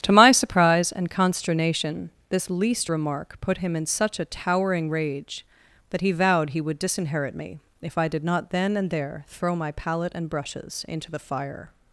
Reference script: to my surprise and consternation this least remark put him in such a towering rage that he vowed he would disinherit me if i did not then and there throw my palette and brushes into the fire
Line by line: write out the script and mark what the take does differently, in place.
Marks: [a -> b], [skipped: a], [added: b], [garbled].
to my surprise and consternation this least remark put him in such a towering rage that he vowed he would disinherit me if i did not then and there throw my palette and brushes into the fire